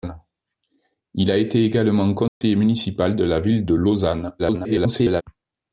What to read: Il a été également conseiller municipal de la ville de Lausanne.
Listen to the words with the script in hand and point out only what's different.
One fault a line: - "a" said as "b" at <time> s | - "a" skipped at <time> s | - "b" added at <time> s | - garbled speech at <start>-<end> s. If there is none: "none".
- garbled speech at 4.4-5.2 s